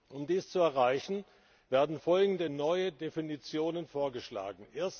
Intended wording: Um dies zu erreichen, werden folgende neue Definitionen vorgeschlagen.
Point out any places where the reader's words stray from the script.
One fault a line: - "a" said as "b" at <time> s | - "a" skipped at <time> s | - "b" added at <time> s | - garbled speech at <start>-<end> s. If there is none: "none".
none